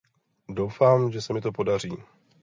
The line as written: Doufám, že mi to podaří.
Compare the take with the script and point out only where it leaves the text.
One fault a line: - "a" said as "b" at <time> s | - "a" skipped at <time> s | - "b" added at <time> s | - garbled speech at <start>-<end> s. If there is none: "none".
- "se" added at 1.2 s